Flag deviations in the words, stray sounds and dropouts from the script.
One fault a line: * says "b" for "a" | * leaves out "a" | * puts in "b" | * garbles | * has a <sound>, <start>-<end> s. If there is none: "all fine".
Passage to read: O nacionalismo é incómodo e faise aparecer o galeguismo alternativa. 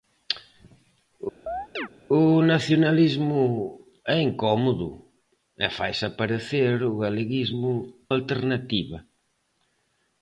* has a chirp, 1.5-1.9 s